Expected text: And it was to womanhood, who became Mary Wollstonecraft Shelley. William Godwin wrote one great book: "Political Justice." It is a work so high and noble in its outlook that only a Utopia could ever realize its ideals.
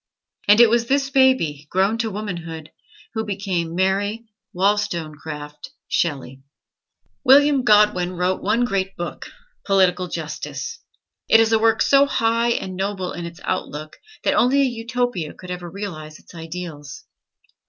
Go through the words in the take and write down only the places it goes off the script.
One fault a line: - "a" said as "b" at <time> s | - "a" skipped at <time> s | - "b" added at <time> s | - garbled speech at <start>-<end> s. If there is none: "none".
- "this baby grown" added at 0.9 s